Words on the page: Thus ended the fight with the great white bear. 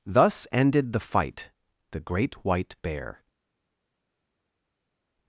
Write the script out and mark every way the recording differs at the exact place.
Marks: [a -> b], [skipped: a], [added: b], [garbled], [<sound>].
Thus ended the fight [skipped: with] the great white bear.